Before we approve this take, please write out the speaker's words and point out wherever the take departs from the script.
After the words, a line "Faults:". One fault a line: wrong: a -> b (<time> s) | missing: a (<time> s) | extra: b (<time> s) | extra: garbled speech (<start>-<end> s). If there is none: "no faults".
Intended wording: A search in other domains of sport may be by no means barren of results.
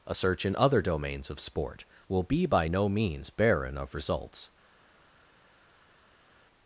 A search in other domains of sport will be by no means barren of results.
Faults:
wrong: may -> will (2.1 s)